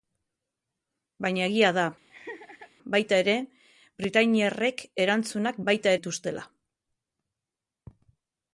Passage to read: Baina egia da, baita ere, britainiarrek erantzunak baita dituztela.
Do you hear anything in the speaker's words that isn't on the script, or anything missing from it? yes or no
no